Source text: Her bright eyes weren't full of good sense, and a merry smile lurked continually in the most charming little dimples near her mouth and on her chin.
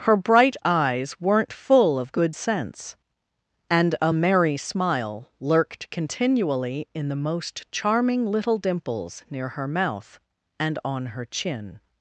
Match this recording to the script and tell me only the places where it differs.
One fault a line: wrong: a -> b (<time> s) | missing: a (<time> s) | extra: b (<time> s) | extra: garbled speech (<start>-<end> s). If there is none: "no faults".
no faults